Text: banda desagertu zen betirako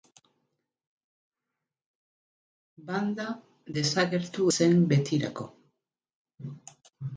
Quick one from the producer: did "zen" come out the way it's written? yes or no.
yes